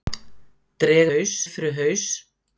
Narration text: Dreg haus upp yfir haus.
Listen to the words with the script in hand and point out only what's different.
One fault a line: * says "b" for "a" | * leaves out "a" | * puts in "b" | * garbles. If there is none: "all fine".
all fine